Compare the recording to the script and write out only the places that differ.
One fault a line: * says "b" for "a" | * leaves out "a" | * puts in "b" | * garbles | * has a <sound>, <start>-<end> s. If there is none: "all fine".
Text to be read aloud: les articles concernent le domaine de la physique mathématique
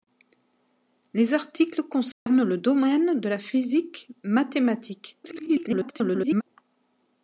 * has a dropout, 2.1-2.3 s
* garbles